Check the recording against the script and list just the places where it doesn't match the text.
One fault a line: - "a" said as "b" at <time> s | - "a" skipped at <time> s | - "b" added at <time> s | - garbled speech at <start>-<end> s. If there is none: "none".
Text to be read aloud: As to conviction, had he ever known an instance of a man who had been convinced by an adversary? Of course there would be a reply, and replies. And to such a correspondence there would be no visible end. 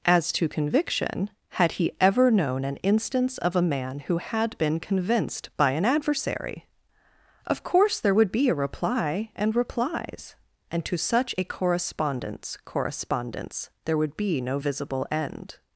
- "correspondence" added at 12.6 s